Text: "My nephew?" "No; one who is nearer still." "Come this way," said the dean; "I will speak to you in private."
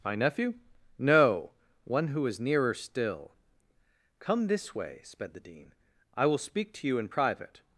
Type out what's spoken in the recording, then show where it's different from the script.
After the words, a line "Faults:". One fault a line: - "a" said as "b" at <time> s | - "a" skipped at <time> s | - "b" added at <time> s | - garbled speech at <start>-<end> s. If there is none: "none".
"My nephew?" "No; one who is nearer still." "Come this way," sped the dean; "I will speak to you in private."
Faults:
- "said" said as "sped" at 5.0 s